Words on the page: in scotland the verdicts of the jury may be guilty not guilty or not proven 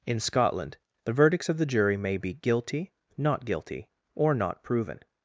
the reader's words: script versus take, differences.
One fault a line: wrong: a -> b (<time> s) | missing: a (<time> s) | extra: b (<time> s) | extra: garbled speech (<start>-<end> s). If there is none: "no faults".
no faults